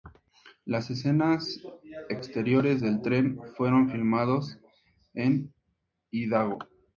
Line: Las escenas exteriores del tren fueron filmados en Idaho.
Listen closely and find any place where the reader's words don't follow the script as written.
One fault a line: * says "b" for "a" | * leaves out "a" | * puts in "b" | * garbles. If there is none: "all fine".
all fine